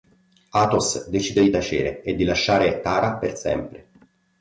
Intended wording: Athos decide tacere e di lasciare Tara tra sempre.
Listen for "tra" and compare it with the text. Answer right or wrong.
wrong